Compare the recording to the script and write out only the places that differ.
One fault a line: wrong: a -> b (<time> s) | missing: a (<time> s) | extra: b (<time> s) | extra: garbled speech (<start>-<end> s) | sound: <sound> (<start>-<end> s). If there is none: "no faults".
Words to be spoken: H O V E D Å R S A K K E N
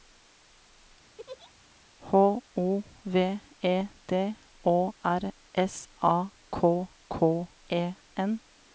sound: laugh (1.2-1.5 s)